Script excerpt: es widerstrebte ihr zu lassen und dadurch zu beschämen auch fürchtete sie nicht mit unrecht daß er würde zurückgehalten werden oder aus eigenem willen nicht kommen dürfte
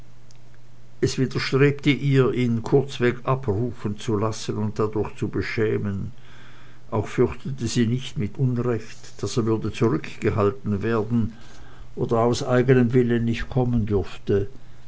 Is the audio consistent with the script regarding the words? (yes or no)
no